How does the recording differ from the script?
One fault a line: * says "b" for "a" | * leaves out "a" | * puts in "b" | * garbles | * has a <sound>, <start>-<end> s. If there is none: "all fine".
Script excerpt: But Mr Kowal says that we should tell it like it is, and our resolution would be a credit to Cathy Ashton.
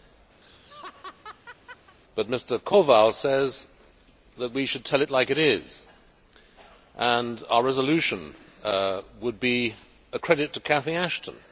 * has a laugh, 0.4-2.0 s